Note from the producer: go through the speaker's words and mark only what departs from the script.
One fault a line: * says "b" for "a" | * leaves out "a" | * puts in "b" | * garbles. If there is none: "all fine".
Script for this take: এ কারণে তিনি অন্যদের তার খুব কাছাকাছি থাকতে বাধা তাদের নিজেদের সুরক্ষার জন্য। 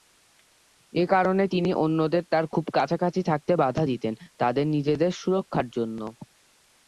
* puts in "দিতেন"